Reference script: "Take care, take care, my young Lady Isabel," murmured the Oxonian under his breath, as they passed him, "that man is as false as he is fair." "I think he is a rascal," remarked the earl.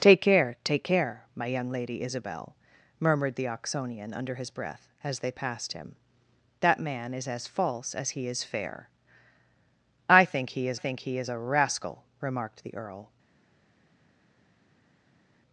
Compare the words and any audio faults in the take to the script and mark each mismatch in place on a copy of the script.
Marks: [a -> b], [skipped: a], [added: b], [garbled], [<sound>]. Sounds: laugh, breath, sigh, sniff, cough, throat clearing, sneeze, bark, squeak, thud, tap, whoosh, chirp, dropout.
"Take care, take care, my young Lady Isabel," murmured the Oxonian under his breath, as they passed him, "that man is as false as he is fair." "I think he is [added: think he is] a rascal," remarked the earl.